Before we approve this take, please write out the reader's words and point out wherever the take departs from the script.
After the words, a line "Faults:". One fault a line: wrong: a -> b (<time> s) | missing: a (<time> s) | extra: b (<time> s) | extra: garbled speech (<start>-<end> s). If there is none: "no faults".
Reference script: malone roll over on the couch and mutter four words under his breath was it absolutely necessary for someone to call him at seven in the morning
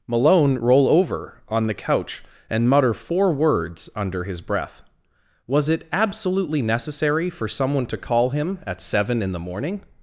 malone roll over on the couch and mutter four words under his breath was it absolutely necessary for someone to call him at seven in the morning
Faults:
no faults